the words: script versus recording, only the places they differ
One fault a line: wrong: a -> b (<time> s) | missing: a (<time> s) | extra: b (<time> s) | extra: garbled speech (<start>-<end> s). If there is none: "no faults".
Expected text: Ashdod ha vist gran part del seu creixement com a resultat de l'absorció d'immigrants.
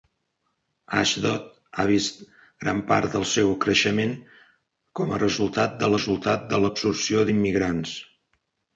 extra: resultat de (6.0 s)